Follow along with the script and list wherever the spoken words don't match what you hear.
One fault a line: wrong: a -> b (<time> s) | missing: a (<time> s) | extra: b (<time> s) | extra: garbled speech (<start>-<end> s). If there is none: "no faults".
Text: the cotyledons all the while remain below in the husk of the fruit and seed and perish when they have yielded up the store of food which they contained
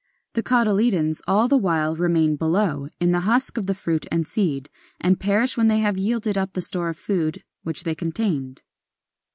no faults